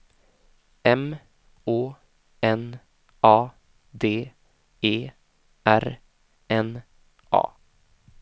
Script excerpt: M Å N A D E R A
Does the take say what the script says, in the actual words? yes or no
no